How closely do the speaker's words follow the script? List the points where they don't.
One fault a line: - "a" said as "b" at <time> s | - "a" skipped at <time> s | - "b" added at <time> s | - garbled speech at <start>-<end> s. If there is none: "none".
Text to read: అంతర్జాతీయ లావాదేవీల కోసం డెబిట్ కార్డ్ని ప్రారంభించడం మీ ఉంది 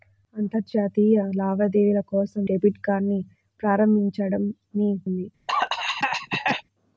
none